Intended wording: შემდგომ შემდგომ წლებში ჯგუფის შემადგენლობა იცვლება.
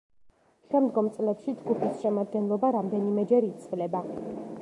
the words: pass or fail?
fail